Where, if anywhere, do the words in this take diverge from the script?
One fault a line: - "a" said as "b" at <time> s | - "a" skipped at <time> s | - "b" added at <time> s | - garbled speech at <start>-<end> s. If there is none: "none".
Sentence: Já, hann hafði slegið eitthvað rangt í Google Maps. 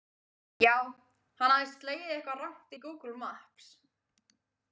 none